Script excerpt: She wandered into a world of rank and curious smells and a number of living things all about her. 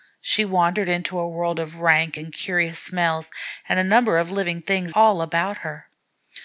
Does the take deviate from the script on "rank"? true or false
false